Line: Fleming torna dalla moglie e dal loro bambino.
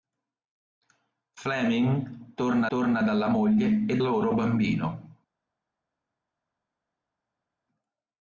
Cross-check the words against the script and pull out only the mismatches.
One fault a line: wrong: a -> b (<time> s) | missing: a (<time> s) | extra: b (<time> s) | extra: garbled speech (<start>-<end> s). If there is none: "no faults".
extra: torna (2.7 s)
missing: dal (4.0 s)